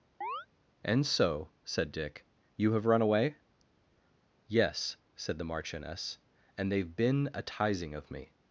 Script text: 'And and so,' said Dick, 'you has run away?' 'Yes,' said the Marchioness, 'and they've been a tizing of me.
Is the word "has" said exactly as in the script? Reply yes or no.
no